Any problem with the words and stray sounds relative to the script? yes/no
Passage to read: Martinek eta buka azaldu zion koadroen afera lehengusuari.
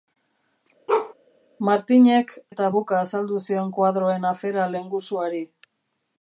yes